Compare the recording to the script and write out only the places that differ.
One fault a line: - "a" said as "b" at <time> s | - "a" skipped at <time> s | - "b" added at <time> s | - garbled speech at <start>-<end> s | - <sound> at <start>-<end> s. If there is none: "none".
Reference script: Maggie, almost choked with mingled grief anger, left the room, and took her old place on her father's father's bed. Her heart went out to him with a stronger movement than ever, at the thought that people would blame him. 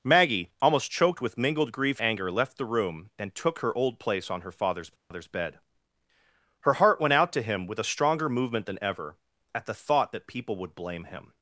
- dropout at 5.0-5.1 s